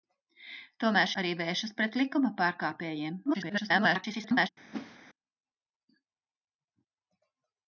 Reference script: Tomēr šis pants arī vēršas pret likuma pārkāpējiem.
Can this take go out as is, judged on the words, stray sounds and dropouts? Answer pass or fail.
fail